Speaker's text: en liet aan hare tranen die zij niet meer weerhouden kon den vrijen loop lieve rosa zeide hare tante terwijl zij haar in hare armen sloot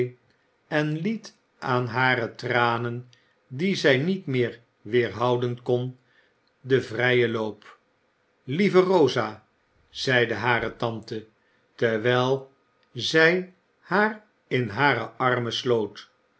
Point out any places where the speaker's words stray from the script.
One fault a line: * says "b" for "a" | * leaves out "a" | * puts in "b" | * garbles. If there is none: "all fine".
all fine